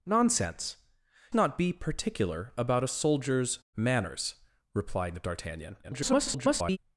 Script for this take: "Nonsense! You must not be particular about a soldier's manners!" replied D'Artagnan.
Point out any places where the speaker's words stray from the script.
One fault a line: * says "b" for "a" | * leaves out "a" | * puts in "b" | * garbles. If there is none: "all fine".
* leaves out "You must"
* garbles